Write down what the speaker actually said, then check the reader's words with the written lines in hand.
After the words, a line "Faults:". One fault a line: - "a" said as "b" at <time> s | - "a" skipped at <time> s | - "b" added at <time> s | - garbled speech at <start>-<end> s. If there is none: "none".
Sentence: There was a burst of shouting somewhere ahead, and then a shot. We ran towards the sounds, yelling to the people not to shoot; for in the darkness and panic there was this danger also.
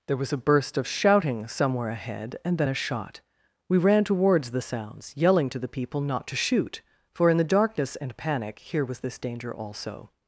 There was a burst of shouting somewhere ahead, and then a shot. We ran towards the sounds, yelling to the people not to shoot; for in the darkness and panic here was this danger also.
Faults:
- "there" said as "here" at 8.6 s